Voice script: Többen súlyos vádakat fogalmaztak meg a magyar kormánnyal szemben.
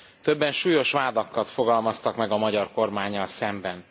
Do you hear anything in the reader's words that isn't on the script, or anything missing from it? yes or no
no